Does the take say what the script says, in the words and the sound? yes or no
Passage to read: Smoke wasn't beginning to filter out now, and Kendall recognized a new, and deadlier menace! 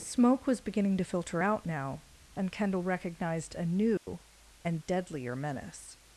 no